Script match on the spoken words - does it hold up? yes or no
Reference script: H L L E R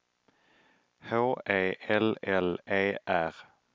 no